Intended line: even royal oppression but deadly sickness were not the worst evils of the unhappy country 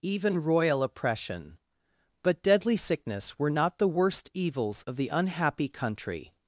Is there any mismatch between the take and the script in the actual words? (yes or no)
no